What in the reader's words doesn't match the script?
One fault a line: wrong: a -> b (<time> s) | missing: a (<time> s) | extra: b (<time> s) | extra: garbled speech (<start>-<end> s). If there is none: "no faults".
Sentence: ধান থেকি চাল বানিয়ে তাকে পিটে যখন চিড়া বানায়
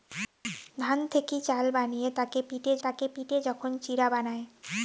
extra: তাকে পিটে (2.8 s)